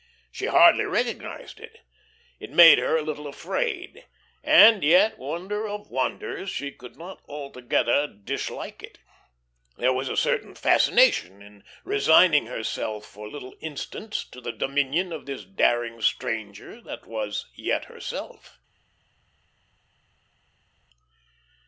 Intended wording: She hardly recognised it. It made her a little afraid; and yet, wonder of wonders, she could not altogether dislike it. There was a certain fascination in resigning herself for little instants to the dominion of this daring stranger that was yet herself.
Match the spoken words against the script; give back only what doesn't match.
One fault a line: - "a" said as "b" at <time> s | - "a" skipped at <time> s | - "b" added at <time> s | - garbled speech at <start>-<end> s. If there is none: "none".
none